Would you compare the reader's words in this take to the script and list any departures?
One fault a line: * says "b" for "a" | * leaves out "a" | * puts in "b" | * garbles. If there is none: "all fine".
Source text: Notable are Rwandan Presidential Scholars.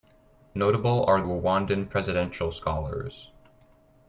all fine